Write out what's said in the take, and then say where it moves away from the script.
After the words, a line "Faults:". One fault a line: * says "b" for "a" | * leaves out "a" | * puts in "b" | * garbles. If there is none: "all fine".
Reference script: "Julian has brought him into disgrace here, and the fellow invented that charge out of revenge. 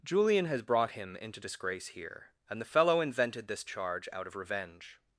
"Julian has brought him into disgrace here, and the fellow invented this charge out of revenge.
Faults:
* says "this" for "that"